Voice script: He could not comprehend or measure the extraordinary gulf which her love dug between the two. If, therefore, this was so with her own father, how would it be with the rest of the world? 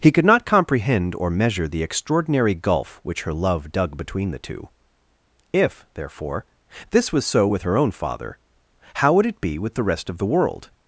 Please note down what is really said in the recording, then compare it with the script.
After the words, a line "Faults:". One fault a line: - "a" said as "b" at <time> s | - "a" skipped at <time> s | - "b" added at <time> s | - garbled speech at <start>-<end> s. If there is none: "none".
He could not comprehend or measure the extraordinary gulf which her love dug between the two. If, therefore, this was so with her own father, how would it be with the rest of the world?
Faults:
none